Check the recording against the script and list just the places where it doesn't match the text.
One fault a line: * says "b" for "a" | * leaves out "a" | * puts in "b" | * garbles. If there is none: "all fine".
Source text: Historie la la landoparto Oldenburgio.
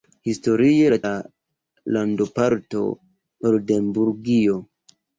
all fine